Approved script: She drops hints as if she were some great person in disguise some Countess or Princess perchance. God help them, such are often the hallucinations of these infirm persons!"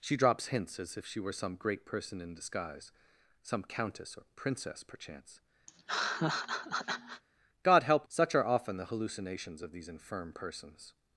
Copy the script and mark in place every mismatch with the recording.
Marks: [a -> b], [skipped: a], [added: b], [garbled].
She drops hints as if she were some great person in disguise some Countess or Princess perchance. God help [skipped: them,] such are often the hallucinations of these infirm persons!"